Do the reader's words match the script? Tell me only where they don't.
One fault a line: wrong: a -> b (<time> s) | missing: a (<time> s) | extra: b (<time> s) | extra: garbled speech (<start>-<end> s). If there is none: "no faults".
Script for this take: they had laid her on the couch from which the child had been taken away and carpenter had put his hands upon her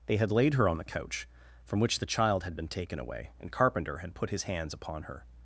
no faults